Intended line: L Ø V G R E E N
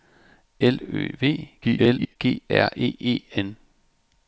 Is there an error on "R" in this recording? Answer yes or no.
no